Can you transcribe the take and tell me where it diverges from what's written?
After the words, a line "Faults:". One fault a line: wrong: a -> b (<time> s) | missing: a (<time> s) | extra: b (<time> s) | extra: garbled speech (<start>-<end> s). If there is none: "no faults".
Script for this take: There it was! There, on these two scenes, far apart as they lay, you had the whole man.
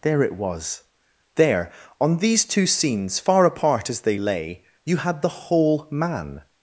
There it was! There, on these two scenes, far apart as they lay, you had the whole man.
Faults:
no faults